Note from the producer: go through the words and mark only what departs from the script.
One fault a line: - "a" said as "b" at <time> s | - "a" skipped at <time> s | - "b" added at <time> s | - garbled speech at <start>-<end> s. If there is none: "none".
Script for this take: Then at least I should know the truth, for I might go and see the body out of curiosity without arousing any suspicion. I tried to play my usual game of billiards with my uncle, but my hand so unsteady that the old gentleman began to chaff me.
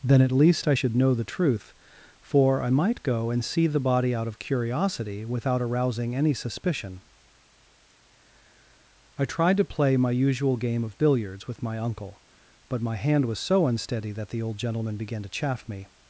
- "was" added at 13.2 s